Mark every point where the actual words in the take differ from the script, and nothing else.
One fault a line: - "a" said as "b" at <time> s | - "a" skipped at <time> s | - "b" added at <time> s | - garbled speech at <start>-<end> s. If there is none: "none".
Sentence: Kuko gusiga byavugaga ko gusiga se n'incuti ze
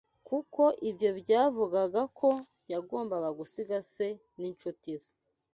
- "gusiga" said as "ibyo" at 0.9 s
- "yagombaga" added at 2.7 s